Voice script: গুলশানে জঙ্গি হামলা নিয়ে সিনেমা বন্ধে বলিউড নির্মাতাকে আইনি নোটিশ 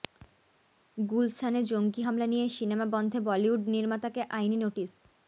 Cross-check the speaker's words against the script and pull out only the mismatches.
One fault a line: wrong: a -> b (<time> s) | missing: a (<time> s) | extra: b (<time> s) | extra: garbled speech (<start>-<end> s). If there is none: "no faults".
no faults